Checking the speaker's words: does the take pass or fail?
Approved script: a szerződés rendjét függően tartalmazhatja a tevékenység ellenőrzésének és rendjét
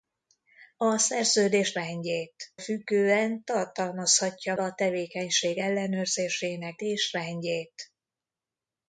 pass